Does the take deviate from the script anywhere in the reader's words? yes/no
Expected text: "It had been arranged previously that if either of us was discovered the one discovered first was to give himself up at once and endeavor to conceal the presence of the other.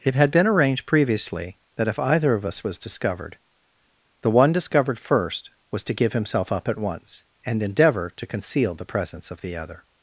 no